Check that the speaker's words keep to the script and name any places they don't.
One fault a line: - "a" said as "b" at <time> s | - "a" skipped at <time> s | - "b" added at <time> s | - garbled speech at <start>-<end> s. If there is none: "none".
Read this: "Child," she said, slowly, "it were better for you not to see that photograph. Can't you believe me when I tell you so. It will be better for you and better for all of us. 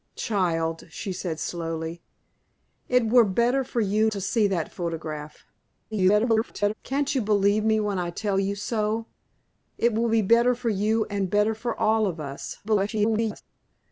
- "not" skipped at 4.1 s
- garbled speech at 5.9-6.7 s
- garbled speech at 12.6-13.4 s